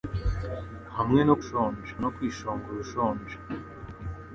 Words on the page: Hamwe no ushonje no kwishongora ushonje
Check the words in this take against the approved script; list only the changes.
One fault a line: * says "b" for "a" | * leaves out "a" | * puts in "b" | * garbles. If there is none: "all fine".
all fine